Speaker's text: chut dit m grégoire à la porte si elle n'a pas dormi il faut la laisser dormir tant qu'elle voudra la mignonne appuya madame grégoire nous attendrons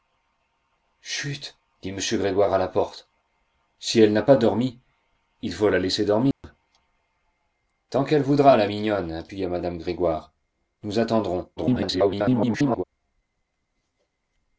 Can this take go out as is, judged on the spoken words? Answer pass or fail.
fail